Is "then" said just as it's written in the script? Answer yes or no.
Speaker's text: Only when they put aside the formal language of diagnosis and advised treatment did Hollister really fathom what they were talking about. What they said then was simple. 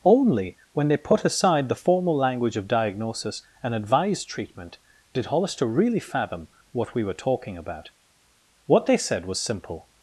no